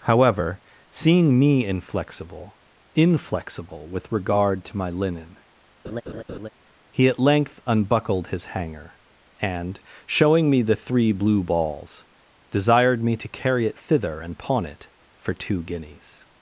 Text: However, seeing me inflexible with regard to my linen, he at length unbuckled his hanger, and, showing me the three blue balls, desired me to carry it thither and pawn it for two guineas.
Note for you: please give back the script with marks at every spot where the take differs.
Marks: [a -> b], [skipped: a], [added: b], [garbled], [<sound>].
However, seeing me inflexible [added: inflexible] with regard to my linen, [laugh] he at length unbuckled his hanger, and, showing me the three blue balls, desired me to carry it thither and pawn it for two guineas.